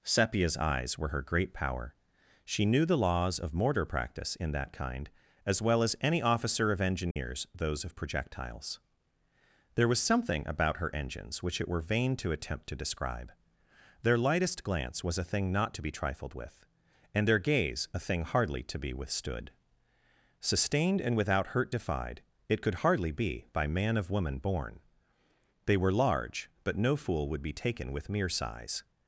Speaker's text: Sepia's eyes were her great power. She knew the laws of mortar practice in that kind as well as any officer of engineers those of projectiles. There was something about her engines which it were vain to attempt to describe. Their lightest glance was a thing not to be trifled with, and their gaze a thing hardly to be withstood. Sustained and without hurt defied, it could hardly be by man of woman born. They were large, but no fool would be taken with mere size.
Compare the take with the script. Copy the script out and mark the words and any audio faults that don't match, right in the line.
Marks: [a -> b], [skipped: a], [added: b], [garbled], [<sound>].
Sepia's eyes were her great power. She knew the laws of mortar practice in that kind as well as any officer of engineers [dropout] those of projectiles. There was something about her engines which it were vain to attempt to describe. Their lightest glance was a thing not to be trifled with, and their gaze a thing hardly to be withstood. Sustained and without hurt defied, it could hardly be by man of woman born. They were large, but no fool would be taken with mere size.